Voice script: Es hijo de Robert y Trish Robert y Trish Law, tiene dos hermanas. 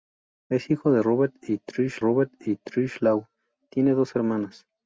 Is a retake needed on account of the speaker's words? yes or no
no